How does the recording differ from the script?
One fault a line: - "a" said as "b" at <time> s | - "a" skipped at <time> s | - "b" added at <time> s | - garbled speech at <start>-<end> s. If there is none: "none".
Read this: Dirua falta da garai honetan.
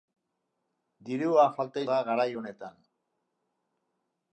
none